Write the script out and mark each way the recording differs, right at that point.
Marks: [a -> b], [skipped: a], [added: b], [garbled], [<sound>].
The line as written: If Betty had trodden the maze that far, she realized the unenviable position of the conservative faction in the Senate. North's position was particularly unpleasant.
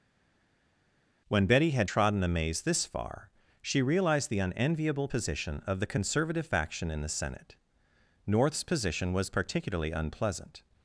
[If -> When] Betty had trodden the maze [that -> this] far, she realized the unenviable position of the conservative faction in the Senate. North's position was particularly unpleasant.